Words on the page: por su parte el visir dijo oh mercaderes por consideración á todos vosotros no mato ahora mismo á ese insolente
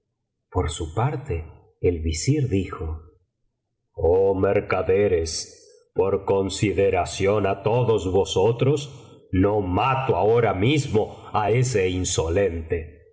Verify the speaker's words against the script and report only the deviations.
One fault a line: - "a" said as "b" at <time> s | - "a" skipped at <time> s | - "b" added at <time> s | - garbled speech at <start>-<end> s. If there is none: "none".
none